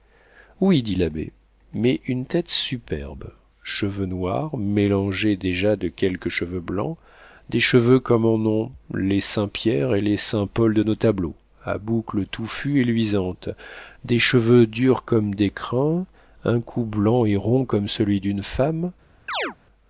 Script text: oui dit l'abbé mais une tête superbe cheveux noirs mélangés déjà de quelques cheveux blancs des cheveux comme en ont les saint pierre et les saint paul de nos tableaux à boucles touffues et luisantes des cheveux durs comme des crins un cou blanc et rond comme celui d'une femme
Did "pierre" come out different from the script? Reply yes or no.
no